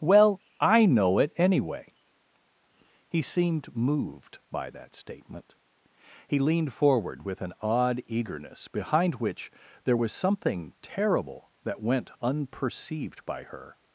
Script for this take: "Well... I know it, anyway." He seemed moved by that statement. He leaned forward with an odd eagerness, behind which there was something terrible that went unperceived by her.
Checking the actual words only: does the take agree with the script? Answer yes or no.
yes